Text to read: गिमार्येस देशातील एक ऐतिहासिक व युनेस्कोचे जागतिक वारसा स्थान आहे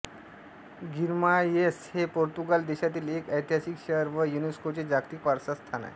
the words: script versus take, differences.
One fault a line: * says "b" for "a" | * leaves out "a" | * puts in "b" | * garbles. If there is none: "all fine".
* puts in "हे पोर्तुगाल"
* puts in "शहर"